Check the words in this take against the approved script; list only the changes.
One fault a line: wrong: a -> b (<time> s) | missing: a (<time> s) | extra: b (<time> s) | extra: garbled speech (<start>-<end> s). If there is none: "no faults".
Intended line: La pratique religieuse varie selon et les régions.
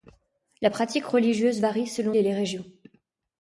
no faults